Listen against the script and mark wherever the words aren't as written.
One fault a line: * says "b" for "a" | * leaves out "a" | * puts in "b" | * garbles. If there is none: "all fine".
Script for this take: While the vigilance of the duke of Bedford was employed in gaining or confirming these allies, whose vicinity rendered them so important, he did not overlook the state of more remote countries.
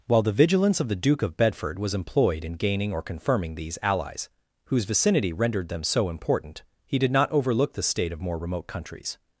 all fine